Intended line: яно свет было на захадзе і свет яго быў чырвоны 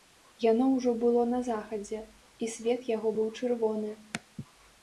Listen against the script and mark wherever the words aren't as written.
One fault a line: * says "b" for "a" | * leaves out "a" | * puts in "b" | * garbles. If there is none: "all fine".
* says "ўжо" for "свет"